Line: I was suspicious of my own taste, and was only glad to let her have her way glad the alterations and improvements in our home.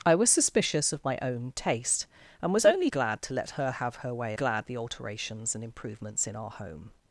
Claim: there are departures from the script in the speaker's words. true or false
false